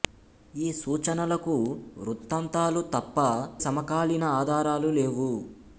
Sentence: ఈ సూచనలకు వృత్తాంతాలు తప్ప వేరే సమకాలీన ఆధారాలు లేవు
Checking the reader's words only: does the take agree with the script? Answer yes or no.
no